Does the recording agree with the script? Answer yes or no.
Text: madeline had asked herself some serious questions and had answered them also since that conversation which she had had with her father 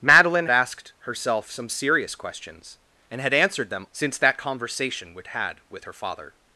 no